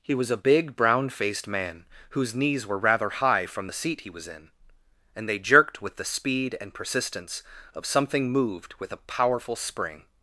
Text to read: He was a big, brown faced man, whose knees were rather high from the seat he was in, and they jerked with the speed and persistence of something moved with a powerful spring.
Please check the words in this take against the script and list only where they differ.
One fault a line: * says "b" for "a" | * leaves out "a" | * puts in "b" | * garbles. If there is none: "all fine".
all fine